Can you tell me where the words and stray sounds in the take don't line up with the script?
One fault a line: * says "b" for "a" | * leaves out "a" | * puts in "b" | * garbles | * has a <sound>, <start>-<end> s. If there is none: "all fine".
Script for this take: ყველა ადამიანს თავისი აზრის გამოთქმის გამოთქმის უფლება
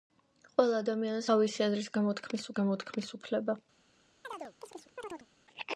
* has a chirp, 4.2-5.3 s